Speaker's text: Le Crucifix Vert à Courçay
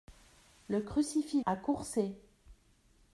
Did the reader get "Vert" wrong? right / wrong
wrong